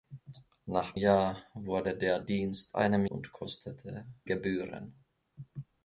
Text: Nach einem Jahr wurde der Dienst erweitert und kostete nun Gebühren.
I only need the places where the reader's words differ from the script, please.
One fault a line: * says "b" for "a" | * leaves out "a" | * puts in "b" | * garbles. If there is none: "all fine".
* leaves out "einem"
* says "einem" for "erweitert"
* leaves out "nun"